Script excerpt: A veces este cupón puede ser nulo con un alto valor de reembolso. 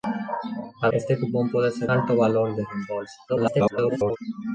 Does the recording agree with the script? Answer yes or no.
no